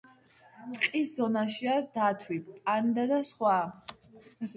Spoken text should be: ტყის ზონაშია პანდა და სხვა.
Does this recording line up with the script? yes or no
no